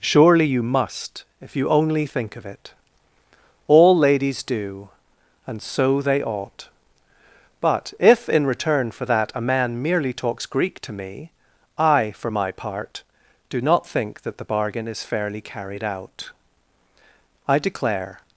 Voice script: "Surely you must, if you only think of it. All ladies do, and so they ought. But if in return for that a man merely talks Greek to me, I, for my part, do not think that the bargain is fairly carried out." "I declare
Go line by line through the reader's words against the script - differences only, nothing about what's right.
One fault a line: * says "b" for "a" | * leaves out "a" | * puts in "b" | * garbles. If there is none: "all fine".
all fine